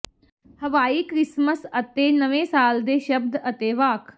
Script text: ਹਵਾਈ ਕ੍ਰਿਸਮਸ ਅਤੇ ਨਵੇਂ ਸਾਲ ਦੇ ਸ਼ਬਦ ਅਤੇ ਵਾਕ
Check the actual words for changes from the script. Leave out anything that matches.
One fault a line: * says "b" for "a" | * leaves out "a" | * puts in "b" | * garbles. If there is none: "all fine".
all fine